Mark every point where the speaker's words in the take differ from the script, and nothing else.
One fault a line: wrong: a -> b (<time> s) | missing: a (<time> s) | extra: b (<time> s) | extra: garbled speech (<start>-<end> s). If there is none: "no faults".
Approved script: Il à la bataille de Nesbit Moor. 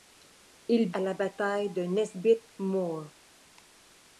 no faults